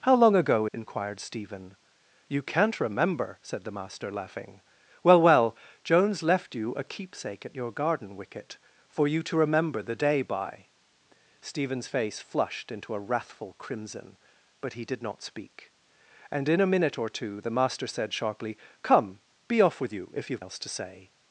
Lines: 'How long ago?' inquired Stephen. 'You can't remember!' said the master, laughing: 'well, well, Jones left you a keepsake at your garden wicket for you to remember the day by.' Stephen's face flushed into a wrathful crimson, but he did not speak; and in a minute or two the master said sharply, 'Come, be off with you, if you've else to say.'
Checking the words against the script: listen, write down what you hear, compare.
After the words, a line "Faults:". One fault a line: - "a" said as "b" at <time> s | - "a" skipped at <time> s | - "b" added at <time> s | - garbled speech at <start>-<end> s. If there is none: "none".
'How long ago?' inquired Stephen. 'You can't remember!' said the master, laughing: 'well, well, Jones left you a keepsake at your garden wicket for you to remember the day by.' Stephen's face flushed into a wrathful crimson, but he did not speak; and in a minute or two the master said sharply, 'Come, be off with you, if you've else to say.'
Faults:
none